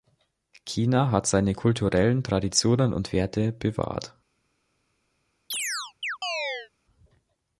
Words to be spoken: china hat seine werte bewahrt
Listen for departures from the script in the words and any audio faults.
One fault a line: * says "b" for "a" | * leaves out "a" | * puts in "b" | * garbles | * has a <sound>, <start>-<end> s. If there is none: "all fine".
* puts in "kulturellen traditionen und"
* has a chirp, 5.5-6.7 s